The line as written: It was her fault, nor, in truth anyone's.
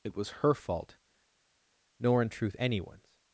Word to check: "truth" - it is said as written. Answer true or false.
true